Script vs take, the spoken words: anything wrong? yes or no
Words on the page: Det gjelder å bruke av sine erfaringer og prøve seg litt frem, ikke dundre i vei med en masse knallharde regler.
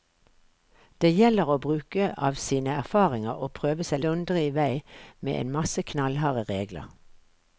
yes